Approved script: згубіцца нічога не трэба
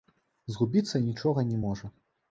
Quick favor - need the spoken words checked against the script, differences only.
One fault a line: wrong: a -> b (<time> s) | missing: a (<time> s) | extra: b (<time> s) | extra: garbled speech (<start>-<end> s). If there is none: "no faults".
wrong: трэба -> можа (1.7 s)